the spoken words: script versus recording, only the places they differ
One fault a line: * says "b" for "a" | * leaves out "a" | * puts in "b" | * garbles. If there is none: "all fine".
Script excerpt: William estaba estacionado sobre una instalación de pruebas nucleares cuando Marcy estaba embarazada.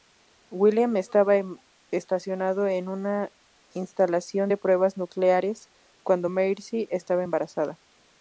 * says "en" for "sobre"